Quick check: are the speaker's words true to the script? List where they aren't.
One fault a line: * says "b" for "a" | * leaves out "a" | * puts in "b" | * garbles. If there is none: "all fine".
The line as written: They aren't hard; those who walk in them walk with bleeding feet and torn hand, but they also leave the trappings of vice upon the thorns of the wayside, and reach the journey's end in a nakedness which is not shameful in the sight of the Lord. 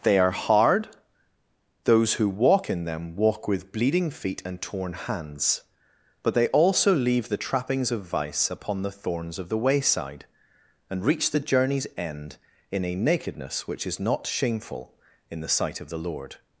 * says "are" for "aren't"
* says "hands" for "hand"